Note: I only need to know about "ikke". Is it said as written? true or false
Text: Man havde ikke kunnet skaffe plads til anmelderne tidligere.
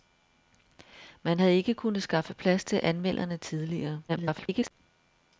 true